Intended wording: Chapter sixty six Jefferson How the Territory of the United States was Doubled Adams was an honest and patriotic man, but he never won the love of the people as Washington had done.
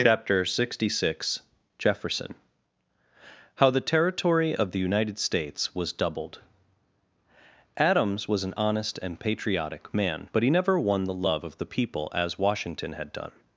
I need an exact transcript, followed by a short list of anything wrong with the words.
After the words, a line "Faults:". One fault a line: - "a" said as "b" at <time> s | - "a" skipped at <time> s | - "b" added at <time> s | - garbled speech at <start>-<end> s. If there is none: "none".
Chapter sixty six Jefferson How the Territory of the United States was Doubled Adams was an honest and patriotic man, but he never won the love of the people as Washington had done.
Faults:
none